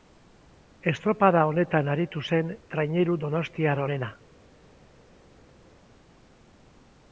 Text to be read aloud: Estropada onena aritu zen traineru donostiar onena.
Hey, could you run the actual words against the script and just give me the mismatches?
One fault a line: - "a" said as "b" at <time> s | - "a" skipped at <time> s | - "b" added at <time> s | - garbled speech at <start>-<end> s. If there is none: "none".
- "onena" said as "honetan" at 1.5 s